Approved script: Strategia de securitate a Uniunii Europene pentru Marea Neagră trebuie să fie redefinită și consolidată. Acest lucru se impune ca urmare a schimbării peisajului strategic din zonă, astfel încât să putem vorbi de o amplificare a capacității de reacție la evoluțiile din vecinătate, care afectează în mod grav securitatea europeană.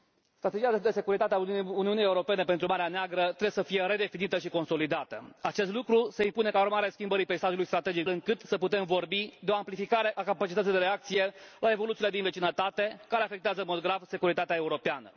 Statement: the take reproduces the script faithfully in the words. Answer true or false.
false